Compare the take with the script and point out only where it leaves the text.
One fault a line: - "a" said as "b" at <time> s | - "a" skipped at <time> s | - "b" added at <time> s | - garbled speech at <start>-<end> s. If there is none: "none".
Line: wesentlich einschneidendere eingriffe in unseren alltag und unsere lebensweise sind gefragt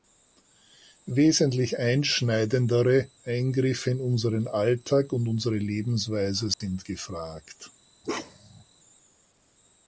none